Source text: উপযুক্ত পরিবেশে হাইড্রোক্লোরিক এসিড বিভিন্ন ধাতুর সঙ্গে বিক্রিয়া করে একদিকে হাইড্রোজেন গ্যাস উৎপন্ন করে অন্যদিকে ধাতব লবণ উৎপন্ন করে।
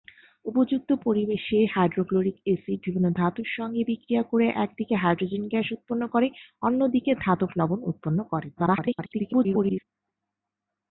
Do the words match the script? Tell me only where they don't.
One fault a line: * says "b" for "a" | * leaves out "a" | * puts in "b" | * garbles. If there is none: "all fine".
* garbles